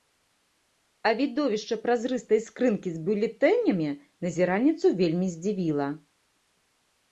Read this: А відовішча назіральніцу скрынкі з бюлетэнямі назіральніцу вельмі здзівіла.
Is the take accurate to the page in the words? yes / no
no